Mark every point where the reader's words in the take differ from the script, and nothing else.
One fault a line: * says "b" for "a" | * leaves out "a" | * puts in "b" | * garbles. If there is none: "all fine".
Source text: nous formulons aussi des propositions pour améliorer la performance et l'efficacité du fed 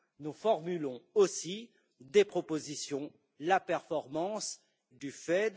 * leaves out "pour améliorer"
* leaves out "et l'efficacité"